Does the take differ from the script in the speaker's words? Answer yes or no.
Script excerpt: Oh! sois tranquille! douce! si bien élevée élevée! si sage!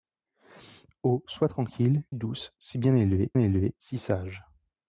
no